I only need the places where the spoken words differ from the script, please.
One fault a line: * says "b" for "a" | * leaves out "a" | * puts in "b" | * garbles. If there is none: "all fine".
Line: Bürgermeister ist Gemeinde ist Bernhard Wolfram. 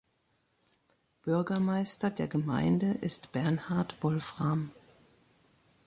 * says "der" for "ist"